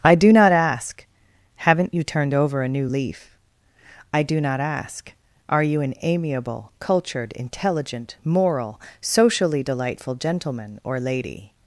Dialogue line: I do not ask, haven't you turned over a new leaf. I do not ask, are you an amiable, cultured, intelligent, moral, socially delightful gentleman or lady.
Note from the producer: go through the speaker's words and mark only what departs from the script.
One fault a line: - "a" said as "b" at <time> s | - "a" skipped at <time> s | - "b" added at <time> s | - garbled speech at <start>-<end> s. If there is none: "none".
none